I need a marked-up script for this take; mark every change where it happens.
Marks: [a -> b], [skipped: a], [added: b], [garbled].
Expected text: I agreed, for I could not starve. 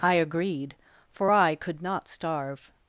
I agreed, for I could not starve.